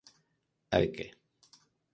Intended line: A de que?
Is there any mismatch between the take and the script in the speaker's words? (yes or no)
no